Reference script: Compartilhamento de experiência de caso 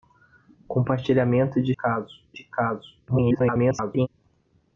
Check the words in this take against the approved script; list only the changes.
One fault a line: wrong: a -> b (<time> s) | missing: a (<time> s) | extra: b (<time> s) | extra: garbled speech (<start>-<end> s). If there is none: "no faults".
wrong: experiência -> caso (1.7 s)
extra: garbled speech (3.1-4.1 s)